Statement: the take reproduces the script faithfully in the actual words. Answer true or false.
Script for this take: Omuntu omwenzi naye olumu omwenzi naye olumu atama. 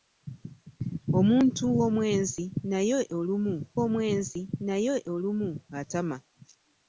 true